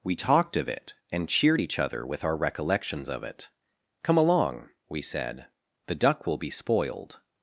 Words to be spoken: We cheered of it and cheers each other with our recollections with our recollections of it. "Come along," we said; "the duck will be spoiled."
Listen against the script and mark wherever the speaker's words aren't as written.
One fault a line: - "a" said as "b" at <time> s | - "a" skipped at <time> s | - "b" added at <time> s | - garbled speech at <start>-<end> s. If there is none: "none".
- "cheered" said as "talked" at 0.1 s
- "cheers" said as "cheered" at 1.3 s
- "with our recollections" skipped at 3.1 s